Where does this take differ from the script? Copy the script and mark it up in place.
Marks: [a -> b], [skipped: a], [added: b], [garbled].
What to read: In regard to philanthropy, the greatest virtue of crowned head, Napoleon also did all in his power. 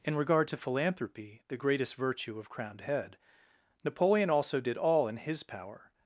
In regard to philanthropy, the greatest virtue of crowned head, Napoleon also did all in his power.